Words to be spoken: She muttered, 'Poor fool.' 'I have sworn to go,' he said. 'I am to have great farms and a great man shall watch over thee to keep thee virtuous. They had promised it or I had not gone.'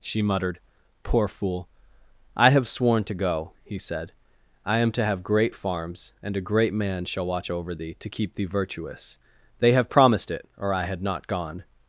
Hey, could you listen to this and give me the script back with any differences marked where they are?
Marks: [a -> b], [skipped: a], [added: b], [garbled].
She muttered, 'Poor fool.' 'I have sworn to go,' he said. 'I am to have great farms and a great man shall watch over thee to keep thee virtuous. They [had -> have] promised it or I had not gone.'